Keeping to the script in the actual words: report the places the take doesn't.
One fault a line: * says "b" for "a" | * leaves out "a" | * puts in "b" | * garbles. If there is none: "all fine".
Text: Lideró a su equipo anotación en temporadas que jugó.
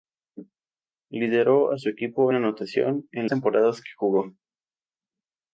all fine